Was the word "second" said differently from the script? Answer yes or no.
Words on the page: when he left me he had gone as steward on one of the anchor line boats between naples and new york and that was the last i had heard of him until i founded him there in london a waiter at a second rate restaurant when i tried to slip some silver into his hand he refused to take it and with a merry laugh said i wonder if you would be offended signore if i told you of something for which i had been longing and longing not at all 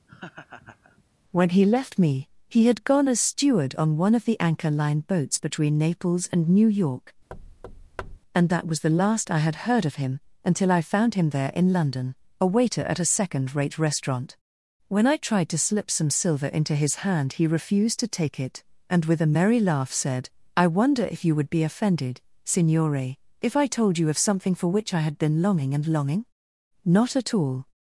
no